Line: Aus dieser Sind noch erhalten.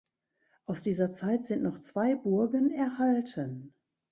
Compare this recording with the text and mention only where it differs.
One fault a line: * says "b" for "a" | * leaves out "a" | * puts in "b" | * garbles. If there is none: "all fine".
* puts in "Zeit"
* puts in "zwei Burgen"